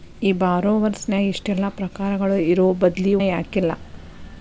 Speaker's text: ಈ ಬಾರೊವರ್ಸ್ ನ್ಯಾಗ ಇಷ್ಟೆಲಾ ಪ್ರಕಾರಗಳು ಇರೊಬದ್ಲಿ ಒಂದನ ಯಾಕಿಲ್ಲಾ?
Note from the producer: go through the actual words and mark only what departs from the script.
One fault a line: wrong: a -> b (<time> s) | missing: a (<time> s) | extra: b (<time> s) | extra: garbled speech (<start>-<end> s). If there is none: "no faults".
missing: ಒಂದನ (3.1 s)